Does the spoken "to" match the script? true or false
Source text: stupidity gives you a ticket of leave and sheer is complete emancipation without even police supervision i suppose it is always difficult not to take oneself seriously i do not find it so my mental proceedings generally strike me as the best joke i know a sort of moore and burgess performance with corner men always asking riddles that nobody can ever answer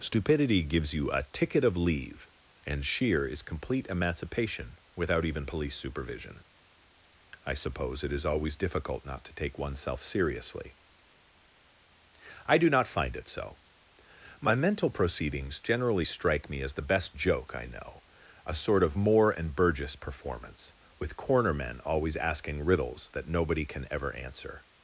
true